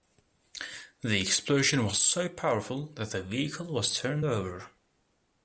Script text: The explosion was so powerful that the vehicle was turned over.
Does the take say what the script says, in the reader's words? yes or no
yes